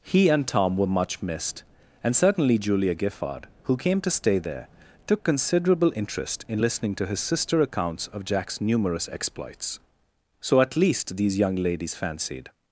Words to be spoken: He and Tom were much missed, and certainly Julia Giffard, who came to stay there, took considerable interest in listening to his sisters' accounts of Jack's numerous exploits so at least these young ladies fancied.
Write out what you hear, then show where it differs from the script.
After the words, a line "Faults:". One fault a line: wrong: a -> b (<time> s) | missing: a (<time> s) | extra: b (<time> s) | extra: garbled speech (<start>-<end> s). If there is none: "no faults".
He and Tom were much missed, and certainly Julia Giffard, who came to stay there, took considerable interest in listening to his sister' accounts of Jack's numerous exploits so at least these young ladies fancied.
Faults:
wrong: sisters -> sister (7.2 s)